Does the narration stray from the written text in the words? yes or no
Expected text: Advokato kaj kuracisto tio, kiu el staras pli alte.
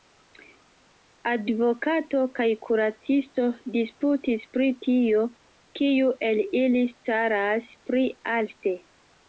yes